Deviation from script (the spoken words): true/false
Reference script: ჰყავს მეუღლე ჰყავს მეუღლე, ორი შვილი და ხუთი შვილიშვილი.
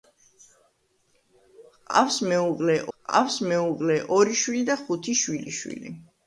false